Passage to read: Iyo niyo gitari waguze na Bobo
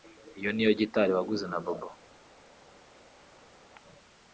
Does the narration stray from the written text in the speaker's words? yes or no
no